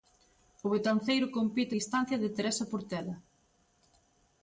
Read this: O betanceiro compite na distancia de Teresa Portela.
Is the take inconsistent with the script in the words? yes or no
yes